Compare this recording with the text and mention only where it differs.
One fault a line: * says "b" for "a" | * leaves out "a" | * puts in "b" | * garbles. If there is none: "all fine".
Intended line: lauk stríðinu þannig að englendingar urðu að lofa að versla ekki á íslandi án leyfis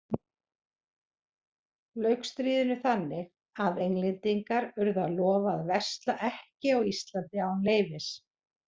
all fine